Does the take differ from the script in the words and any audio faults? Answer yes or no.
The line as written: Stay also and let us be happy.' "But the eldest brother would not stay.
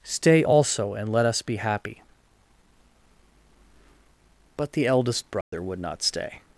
yes